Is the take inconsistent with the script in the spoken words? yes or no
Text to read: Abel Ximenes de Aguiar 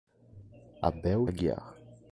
yes